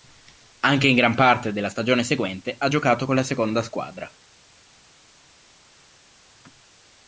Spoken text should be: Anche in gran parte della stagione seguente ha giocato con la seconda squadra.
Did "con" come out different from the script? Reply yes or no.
no